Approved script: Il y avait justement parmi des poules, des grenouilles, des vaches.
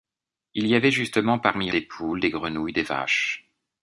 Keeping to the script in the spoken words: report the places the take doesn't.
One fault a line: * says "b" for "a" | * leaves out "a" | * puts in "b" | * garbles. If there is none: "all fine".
all fine